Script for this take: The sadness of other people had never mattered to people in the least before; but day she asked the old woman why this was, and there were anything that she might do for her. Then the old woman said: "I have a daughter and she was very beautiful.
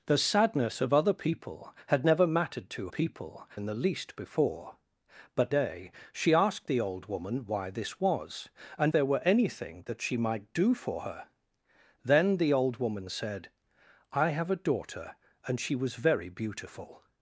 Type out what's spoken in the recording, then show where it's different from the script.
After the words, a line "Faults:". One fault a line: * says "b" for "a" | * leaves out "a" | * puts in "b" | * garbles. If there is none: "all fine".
The sadness of other people had never mattered to people in the least before; but day she asked the old woman why this was, and there were anything that she might do for her. Then the old woman said: "I have a daughter and she was very beautiful.
Faults:
all fine